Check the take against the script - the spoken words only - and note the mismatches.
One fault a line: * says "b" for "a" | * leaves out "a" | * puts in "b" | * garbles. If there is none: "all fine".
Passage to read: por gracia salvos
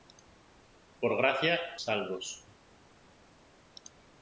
all fine